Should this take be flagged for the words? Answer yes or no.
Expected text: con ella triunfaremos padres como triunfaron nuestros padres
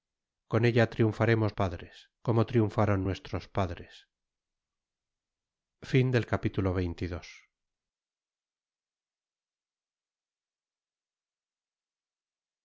no